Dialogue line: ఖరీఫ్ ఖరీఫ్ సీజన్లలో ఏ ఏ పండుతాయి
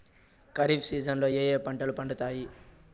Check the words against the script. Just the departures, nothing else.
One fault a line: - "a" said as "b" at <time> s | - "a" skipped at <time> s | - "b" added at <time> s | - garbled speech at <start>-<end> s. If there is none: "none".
- "ఖరీఫ్" skipped at 0.9 s
- "పంటలు" added at 1.7 s